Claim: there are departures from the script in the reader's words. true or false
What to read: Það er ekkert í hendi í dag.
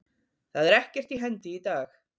false